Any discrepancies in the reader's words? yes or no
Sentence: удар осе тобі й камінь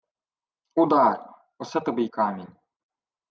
no